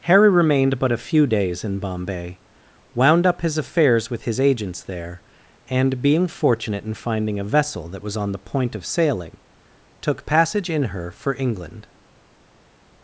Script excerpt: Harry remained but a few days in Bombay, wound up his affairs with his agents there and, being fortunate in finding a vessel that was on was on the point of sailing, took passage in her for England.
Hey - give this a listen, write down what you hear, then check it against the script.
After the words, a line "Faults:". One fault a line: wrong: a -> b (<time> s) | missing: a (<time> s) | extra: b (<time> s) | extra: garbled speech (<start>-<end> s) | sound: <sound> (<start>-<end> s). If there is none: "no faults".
Harry remained but a few days in Bombay, wound up his affairs with his agents there and, being fortunate in finding a vessel that was on the point of sailing, took passage in her for England.
Faults:
missing: was on (8.3 s)